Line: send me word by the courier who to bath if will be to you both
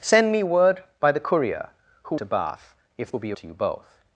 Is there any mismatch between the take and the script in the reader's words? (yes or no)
no